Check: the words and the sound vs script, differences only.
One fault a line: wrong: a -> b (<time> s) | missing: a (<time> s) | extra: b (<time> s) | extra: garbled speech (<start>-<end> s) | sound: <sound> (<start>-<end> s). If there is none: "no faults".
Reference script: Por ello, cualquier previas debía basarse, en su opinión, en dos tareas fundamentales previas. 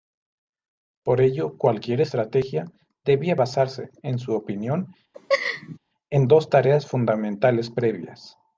wrong: previas -> estrategia (2.0 s)
sound: laugh (5.1-5.8 s)